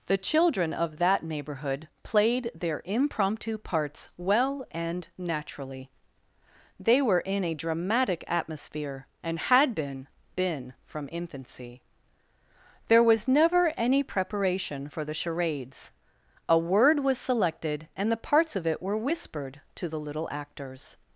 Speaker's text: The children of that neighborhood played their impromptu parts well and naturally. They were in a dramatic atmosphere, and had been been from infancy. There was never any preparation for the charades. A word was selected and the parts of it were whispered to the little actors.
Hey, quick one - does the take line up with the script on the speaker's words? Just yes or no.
yes